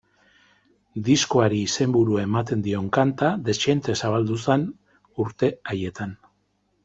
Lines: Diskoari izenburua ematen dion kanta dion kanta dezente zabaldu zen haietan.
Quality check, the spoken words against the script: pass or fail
fail